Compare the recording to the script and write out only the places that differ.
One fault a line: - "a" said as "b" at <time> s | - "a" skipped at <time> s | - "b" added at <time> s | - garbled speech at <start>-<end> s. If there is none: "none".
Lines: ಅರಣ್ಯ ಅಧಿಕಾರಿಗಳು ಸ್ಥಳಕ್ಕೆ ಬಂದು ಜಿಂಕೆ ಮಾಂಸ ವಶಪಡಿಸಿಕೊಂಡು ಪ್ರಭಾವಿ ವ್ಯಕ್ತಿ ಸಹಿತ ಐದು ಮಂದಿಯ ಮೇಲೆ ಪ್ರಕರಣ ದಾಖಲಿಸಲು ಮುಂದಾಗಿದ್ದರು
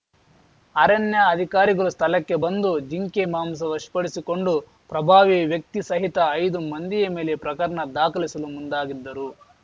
none